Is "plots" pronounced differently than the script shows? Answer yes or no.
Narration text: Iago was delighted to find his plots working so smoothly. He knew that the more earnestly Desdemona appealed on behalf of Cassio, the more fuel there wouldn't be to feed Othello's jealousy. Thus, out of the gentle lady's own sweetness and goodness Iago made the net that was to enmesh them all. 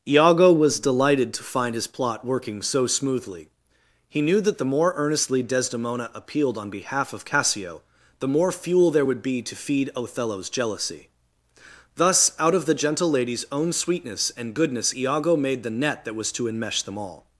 yes